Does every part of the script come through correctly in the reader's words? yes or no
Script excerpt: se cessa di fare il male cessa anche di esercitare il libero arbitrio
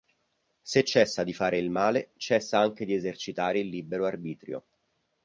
yes